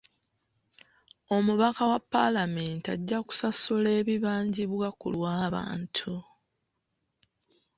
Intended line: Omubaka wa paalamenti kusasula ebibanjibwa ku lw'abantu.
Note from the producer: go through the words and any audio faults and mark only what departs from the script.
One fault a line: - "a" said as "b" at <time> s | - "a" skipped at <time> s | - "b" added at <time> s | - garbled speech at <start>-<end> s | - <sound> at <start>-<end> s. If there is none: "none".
- "ajja" added at 3.0 s